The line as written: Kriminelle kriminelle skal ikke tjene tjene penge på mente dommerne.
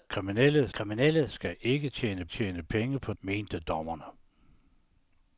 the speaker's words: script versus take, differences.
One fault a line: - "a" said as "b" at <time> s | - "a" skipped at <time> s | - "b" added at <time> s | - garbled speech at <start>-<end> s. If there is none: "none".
none